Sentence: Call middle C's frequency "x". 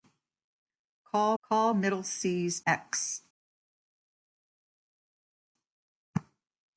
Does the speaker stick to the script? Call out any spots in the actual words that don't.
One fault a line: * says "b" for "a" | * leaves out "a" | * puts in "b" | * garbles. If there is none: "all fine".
* puts in "call"
* leaves out "frequency"